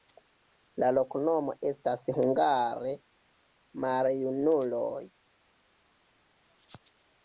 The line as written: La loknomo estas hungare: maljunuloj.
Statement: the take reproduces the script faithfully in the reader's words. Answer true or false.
true